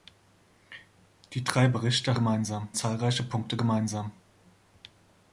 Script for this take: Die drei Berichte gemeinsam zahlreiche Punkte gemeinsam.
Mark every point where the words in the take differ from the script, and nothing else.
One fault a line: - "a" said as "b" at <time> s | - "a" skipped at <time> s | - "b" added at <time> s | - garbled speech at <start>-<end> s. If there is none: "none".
none